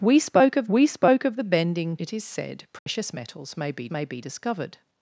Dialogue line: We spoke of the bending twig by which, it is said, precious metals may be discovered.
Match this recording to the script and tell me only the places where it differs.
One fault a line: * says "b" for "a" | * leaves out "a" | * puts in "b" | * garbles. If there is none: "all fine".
* says "we spoke of the bending" for "the bending twig by which"
* puts in "may be"